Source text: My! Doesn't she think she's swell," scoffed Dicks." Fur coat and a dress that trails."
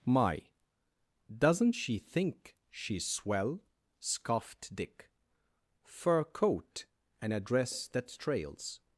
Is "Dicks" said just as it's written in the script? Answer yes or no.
no